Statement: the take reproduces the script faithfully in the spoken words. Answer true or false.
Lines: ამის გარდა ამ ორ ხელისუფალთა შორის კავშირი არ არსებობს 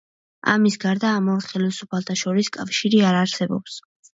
true